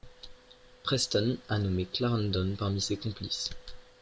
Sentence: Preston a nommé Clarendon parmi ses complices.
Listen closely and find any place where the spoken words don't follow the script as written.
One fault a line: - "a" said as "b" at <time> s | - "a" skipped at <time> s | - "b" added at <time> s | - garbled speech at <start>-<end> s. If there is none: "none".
none